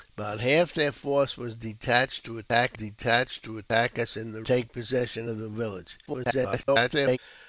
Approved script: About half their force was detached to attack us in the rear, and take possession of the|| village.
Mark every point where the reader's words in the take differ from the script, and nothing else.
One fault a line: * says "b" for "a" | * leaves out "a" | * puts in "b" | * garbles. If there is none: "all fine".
* puts in "detached to attack"
* leaves out "rear and"
* garbles